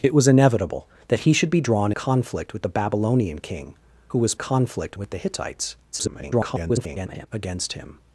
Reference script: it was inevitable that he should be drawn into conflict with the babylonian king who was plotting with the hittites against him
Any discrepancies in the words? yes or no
yes